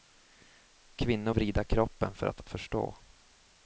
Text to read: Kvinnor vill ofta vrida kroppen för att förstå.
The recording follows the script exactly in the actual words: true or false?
false